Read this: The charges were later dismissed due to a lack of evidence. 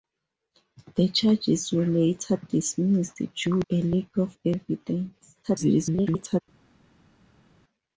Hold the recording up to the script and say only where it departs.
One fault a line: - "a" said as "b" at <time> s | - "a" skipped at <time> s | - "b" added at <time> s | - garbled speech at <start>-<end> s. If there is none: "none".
- "to" skipped at 3.6 s
- garbled speech at 5.4-6.4 s